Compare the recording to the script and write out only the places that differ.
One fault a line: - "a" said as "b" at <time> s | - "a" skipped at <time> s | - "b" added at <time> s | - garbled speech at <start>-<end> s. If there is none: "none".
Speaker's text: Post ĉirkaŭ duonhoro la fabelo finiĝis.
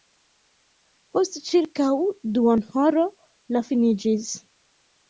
- "fabelo" skipped at 3.6 s